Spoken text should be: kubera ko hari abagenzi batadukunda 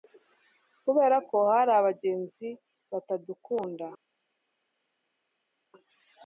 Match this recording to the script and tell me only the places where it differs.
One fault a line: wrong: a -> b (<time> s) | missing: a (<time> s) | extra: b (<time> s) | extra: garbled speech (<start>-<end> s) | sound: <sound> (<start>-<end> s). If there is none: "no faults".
no faults